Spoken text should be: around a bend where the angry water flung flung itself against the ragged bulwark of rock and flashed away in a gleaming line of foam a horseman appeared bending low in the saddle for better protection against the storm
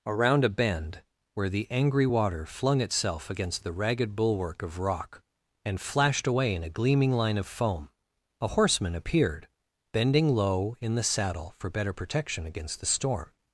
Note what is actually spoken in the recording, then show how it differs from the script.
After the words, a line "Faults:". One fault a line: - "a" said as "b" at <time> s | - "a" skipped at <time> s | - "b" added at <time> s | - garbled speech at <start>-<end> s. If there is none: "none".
around a bend where the angry water flung itself against the ragged bulwark of rock and flashed away in a gleaming line of foam a horseman appeared bending low in the saddle for better protection against the storm
Faults:
- "flung" skipped at 2.8 s